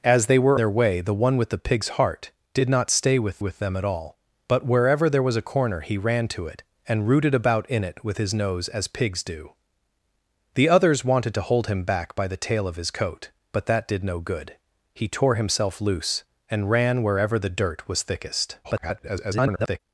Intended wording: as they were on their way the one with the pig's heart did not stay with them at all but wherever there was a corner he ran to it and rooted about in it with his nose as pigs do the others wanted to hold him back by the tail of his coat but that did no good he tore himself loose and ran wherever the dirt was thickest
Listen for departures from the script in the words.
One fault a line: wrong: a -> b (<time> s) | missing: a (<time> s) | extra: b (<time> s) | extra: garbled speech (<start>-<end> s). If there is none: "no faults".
missing: on (0.6 s)
extra: with (3.4 s)
extra: garbled speech (18.6-19.8 s)